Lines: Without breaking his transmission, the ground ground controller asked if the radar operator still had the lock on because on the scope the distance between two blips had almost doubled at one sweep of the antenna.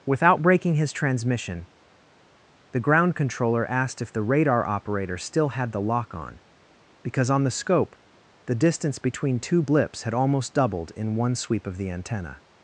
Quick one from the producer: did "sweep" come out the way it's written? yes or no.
yes